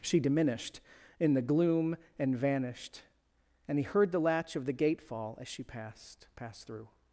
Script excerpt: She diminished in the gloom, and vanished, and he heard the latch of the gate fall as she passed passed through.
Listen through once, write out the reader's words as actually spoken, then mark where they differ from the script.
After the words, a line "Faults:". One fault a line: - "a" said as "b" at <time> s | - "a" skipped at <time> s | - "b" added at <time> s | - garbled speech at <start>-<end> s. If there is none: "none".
She diminished in the gloom, and vanished, and he heard the latch of the gate fall as she passed passed through.
Faults:
none